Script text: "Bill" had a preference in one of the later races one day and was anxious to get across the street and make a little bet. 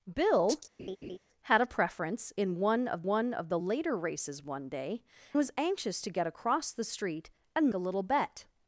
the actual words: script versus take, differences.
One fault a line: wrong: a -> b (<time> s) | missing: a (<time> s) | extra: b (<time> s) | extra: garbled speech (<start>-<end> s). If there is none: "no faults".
extra: one of (3.1 s)
missing: and (5.0 s)
missing: make (7.7 s)